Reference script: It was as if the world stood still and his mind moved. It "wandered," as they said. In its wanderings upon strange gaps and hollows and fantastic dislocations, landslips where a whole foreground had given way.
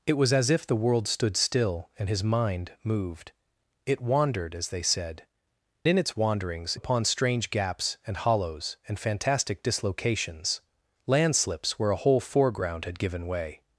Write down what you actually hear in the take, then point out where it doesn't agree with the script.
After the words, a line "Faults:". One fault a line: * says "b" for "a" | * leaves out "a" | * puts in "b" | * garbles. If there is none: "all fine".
It was as if the world stood still and his mind moved. It "wandered," as they said. In its wanderings upon strange gaps and hollows and fantastic dislocations, landslips where a whole foreground had given way.
Faults:
all fine